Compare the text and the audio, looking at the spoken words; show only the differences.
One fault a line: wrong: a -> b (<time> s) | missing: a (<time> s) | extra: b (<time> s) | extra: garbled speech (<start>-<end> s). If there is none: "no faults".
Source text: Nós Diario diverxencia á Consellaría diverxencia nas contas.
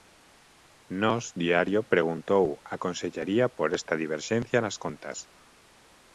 wrong: diverxencia -> preguntou (1.9 s)
extra: por esta (3.6 s)